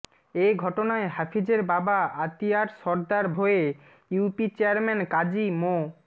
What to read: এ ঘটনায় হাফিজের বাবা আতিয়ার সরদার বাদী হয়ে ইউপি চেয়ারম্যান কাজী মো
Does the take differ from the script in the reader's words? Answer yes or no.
yes